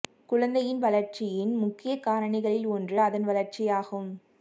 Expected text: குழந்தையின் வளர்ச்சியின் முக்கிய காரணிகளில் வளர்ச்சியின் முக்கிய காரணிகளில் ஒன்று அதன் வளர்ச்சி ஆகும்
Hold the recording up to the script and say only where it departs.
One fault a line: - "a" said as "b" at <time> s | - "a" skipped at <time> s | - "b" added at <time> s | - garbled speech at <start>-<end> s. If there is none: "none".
- "வளர்ச்சியின் முக்கிய காரணிகளில்" skipped at 2.7 s